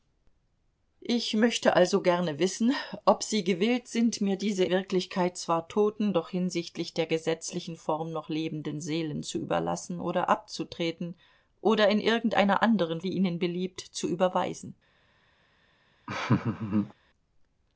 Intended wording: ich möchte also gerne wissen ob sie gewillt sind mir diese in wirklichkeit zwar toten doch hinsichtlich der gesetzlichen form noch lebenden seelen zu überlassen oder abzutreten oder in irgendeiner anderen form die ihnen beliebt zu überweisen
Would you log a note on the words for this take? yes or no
yes